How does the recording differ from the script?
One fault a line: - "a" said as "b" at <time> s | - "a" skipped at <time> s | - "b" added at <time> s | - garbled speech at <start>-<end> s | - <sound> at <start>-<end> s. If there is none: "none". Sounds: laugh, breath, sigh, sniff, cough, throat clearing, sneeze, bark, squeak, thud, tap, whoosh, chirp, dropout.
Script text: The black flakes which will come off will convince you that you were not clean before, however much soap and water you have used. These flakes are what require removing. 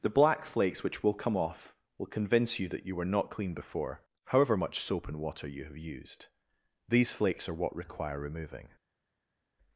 none